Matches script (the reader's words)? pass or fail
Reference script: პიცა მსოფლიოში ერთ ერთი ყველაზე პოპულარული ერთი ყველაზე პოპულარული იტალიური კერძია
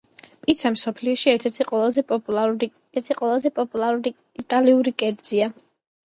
pass